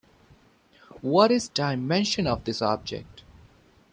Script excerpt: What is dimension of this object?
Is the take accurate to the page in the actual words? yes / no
yes